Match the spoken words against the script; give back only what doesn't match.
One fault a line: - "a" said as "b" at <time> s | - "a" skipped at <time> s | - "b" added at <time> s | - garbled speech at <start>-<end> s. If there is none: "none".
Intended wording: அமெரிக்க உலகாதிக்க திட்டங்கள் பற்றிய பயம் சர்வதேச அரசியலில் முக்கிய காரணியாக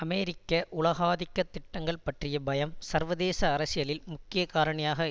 none